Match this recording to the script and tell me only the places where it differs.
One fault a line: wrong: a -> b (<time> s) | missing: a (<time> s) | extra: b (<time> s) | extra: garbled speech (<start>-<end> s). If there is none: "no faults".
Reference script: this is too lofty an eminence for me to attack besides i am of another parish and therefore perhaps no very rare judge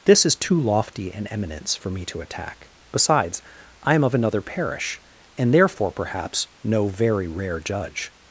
no faults